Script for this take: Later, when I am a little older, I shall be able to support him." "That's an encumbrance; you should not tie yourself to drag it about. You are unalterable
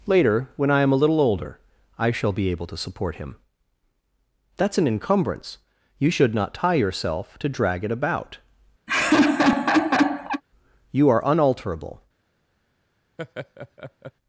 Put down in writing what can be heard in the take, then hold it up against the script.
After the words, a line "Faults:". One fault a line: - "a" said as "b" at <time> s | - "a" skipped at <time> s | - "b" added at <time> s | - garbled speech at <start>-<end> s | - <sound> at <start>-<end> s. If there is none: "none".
Later, when I am a little older, I shall be able to support him." "That's an encumbrance; you should not tie yourself to drag it about. You are unalterable
Faults:
- laugh at 8.9-10.4 s
- laugh at 13.2-14.1 s